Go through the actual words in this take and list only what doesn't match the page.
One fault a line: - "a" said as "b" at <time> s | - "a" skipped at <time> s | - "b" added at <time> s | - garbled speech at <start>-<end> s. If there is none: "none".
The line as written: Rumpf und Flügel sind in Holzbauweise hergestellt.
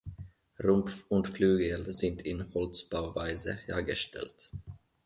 none